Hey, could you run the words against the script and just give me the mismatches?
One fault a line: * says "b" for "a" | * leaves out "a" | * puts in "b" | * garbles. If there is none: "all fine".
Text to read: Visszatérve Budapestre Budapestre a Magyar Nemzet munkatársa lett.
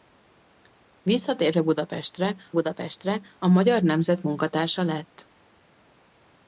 all fine